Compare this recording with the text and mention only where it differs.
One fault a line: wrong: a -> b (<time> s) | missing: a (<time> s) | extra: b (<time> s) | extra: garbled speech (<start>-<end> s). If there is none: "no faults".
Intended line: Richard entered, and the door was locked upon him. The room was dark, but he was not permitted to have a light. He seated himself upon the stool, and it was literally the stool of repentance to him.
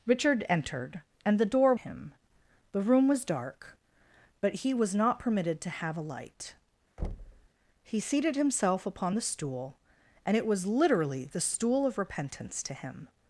missing: was locked upon (1.8 s)